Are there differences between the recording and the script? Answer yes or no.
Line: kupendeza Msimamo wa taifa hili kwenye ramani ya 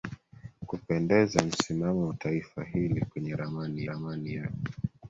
yes